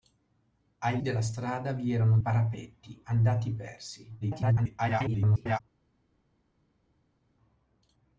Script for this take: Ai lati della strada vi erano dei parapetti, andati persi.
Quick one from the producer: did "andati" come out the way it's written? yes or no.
yes